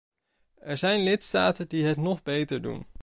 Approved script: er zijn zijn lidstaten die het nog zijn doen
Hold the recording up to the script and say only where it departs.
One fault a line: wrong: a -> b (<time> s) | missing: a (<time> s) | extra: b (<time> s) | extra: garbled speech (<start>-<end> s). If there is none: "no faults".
missing: zijn (1.0 s)
wrong: zijn -> beter (2.2 s)